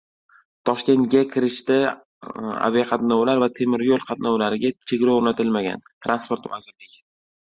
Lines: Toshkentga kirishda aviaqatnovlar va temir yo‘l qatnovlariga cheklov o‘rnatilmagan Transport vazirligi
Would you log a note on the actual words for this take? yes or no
no